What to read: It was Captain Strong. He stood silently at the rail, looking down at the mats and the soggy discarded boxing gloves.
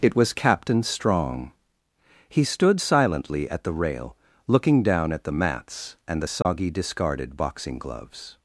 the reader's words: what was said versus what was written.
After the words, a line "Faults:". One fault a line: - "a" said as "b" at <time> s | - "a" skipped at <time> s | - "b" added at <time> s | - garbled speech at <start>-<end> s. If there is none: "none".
It was Captain Strong. He stood silently at the rail, looking down at the mats and the soggy discarded boxing gloves.
Faults:
none